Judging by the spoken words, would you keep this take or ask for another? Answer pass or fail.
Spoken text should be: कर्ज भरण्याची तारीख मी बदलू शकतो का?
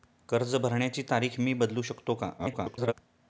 fail